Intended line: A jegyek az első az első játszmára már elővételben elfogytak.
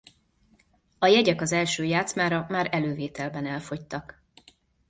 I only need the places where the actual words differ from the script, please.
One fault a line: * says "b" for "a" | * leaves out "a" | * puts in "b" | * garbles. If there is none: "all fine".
* leaves out "az első"